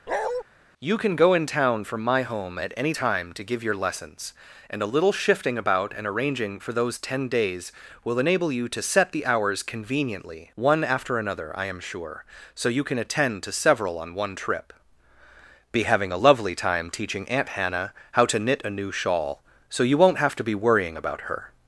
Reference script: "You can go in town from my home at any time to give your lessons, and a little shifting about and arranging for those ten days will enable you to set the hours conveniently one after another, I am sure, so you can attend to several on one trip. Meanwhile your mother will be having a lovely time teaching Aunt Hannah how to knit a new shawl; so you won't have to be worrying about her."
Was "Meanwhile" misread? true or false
true